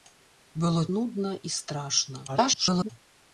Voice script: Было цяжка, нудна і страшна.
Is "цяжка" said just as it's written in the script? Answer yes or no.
no